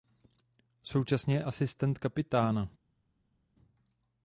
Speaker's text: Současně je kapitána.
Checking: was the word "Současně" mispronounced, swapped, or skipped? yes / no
no